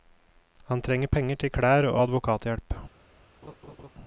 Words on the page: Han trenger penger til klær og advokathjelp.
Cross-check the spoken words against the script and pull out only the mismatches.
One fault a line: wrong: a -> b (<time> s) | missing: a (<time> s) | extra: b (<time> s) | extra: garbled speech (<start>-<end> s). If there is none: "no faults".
no faults